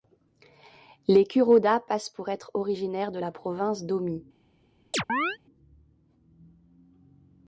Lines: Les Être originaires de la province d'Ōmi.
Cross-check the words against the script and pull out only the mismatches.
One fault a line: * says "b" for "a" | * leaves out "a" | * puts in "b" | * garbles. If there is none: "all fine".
* puts in "Kuroda passent pour"